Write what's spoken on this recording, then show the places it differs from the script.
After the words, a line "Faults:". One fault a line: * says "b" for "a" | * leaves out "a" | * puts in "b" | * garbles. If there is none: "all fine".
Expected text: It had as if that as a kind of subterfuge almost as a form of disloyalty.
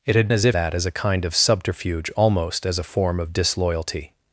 It had as if that as a kind of subterfuge almost as a form of disloyalty.
Faults:
all fine